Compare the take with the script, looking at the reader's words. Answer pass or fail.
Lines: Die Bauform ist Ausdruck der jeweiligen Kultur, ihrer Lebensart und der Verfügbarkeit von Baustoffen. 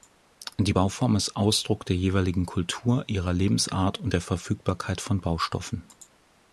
pass